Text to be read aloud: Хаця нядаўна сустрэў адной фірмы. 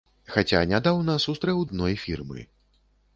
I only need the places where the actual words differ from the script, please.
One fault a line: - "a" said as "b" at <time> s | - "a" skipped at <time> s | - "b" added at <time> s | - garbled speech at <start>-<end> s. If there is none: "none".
none